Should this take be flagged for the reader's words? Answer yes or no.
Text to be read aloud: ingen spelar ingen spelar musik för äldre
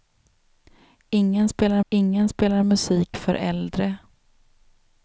no